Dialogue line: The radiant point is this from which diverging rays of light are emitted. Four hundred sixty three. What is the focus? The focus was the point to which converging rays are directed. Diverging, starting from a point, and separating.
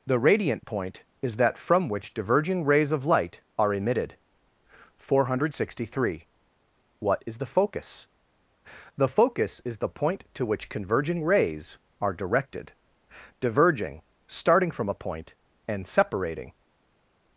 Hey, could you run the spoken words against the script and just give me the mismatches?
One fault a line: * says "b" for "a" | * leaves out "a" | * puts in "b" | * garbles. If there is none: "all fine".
* says "that" for "this"
* says "is" for "was"